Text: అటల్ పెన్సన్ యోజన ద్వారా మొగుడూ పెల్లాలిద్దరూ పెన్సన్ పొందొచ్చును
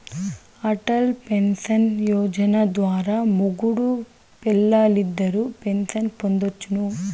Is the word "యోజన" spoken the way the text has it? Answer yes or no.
yes